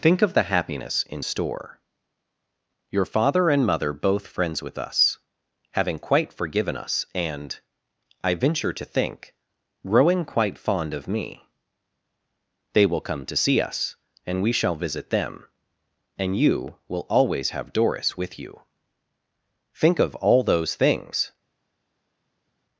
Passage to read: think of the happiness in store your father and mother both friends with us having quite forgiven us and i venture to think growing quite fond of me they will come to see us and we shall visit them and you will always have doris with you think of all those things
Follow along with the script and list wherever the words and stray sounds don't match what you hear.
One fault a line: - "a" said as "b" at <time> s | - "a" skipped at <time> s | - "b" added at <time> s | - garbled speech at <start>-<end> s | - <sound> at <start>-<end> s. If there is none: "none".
none